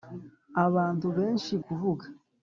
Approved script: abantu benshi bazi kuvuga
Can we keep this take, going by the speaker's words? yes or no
no